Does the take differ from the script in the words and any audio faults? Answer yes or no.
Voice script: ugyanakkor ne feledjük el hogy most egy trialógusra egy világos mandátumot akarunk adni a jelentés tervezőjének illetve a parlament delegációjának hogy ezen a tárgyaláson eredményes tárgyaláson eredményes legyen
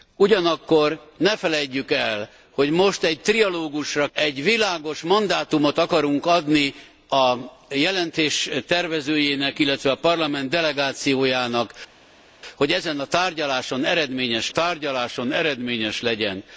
no